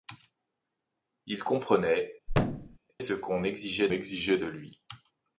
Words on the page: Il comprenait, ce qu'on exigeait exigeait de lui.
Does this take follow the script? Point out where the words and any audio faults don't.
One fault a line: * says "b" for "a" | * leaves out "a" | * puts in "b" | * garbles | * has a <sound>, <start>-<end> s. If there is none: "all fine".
* has a thud, 2.3-2.8 s